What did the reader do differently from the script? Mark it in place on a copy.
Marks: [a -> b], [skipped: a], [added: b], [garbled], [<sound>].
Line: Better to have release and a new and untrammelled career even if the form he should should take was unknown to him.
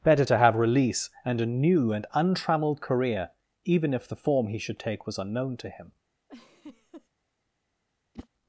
Better to have release and a new and untrammelled career even if the form he should [skipped: should] take was unknown to him. [laugh] [whoosh]